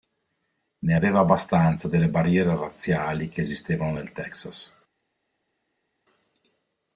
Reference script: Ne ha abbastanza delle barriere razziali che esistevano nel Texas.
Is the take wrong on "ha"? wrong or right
wrong